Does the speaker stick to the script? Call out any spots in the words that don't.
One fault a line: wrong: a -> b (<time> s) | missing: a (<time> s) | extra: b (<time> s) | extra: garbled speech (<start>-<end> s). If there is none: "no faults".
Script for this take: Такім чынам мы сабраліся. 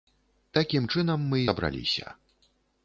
no faults